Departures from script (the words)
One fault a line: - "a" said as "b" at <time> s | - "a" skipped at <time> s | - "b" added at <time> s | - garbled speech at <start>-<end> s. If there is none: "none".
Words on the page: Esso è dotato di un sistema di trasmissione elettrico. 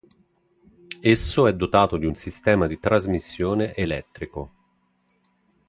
none